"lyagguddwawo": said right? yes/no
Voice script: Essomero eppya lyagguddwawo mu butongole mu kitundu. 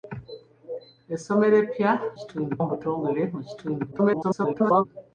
no